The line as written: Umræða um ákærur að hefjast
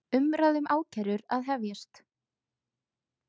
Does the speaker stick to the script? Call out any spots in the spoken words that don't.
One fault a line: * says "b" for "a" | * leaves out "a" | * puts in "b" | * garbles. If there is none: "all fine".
all fine